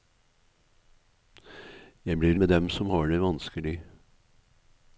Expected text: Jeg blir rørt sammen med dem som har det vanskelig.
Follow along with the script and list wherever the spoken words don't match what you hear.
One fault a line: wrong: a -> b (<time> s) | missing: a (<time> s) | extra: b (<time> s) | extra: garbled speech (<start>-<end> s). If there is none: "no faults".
missing: rørt sammen (2.4 s)